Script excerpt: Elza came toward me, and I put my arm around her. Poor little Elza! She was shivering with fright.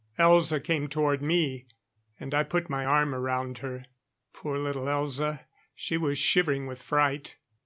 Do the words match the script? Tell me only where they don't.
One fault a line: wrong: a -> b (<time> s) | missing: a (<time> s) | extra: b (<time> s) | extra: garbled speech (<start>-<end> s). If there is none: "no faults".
no faults